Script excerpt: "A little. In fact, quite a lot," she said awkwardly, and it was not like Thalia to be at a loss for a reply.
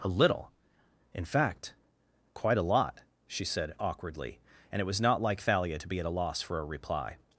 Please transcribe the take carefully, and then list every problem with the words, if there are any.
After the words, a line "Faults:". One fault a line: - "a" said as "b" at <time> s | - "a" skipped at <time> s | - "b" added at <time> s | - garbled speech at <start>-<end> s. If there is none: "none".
"A little. In fact, quite a lot," she said awkwardly, and it was not like Thalia to be at a loss for a reply.
Faults:
none